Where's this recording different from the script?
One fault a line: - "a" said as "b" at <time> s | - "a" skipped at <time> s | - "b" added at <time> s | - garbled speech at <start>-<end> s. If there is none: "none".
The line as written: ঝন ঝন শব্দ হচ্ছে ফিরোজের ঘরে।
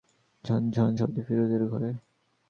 - "হচ্ছে" skipped at 1.2 s